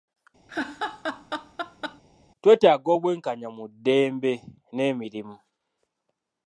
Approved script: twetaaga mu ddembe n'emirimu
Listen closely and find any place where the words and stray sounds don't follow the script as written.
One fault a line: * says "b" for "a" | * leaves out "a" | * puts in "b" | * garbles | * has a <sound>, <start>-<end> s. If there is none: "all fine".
* has a laugh, 0.5-2.0 s
* puts in "obw'enkanya"